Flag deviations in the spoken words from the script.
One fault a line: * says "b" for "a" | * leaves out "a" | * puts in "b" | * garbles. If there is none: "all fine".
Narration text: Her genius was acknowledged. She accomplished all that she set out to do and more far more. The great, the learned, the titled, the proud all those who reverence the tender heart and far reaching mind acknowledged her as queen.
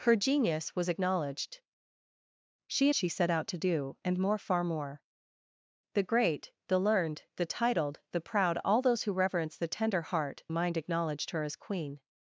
* leaves out "accomplished all that"
* leaves out "and far reaching"